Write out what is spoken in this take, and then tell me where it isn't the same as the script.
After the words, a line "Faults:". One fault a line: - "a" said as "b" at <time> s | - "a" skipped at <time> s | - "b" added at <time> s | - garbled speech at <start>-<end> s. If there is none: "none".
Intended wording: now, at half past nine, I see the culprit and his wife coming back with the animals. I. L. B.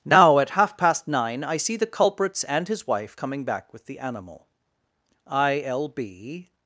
now, at half past nine, I see the culprits and his wife coming back with the animal. I. L. B.
Faults:
- "culprit" said as "culprits" at 1.9 s
- "animals" said as "animal" at 4.0 s